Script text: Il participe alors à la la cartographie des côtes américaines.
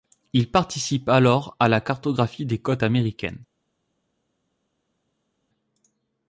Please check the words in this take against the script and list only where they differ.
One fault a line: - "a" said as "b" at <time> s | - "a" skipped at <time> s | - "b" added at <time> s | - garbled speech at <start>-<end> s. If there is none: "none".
- "la" skipped at 1.8 s